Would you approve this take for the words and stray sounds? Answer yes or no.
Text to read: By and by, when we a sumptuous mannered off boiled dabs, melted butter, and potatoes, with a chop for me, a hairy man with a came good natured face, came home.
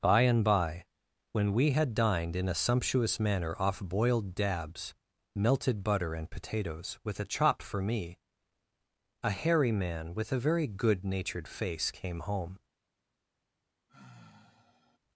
no